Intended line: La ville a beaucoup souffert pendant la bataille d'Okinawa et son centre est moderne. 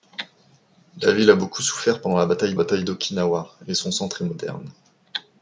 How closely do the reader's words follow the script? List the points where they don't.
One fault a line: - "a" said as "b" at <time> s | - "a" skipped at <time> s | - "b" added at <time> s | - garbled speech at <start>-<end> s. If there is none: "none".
- "bataille" added at 2.5 s